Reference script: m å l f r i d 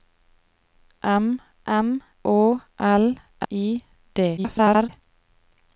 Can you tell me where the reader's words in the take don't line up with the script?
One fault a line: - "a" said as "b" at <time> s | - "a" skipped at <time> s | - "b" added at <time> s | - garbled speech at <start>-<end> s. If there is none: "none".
- "m" added at 1.7 s
- "f r" skipped at 3.1 s
- garbled speech at 4.4-4.9 s